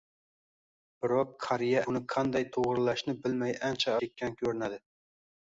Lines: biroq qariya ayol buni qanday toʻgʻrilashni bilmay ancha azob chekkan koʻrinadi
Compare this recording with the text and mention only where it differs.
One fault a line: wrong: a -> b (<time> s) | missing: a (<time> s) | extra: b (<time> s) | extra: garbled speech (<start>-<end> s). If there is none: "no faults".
missing: ayol (1.8 s)
missing: azob (3.9 s)